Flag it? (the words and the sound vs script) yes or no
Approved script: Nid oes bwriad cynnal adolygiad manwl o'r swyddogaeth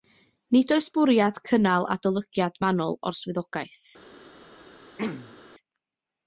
yes